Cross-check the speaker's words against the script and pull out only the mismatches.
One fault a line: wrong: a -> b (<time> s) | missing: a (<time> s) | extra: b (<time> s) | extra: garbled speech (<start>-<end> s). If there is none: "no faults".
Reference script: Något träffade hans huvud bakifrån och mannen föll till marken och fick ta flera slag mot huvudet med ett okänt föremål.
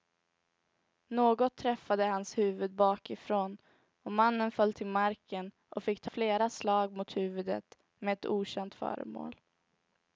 no faults